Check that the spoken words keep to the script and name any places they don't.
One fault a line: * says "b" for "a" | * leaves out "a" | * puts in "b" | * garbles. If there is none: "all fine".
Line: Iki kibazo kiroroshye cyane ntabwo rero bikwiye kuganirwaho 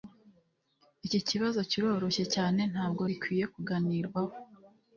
* leaves out "rero"